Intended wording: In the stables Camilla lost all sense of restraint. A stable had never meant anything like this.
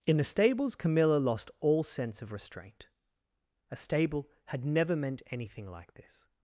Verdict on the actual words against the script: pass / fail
pass